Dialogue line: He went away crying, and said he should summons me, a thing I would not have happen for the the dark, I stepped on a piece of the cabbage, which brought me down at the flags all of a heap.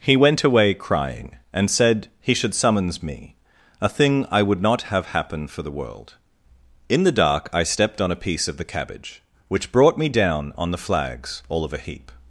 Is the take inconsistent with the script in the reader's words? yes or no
yes